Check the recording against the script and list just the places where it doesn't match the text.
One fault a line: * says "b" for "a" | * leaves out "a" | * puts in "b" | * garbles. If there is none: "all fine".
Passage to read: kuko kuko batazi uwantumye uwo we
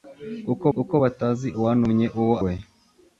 all fine